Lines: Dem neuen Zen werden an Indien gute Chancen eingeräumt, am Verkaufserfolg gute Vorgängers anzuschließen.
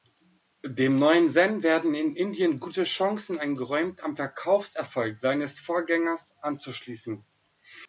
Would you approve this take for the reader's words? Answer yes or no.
no